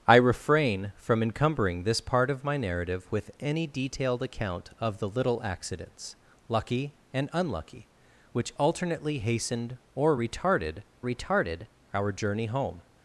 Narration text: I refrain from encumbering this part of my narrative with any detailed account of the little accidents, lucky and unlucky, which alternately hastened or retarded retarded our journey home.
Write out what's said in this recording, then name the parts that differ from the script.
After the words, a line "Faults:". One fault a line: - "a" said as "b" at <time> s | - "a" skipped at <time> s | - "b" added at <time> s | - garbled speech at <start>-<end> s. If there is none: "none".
I refrain from encumbering this part of my narrative with any detailed account of the little accidents, lucky and unlucky, which alternately hastened or retarded retarded our journey home.
Faults:
none